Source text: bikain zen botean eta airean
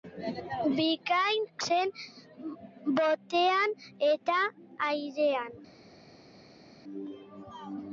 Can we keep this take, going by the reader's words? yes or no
yes